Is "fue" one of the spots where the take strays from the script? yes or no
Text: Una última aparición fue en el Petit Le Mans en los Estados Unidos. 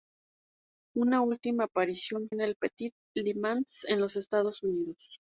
yes